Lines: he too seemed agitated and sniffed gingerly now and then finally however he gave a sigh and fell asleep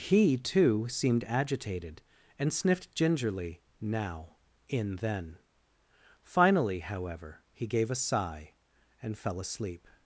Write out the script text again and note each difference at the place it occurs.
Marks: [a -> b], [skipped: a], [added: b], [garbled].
he too seemed agitated and sniffed gingerly now [and -> in] then finally however he gave a sigh and fell asleep